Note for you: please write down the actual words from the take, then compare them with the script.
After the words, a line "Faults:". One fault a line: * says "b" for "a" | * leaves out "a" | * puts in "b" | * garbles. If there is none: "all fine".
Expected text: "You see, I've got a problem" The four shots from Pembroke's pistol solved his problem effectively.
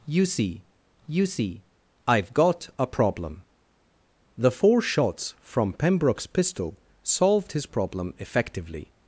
"You see you see, I've got a problem" The four shots from Pembroke's pistol solved his problem effectively.
Faults:
* puts in "you see"